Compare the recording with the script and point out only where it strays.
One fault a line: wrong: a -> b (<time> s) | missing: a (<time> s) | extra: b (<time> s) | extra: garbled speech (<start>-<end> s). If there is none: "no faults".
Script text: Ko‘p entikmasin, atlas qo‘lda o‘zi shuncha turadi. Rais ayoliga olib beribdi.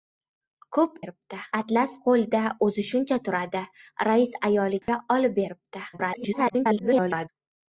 wrong: entikmasin -> beribdi (1.0 s)
extra: garbled speech (5.9-7.3 s)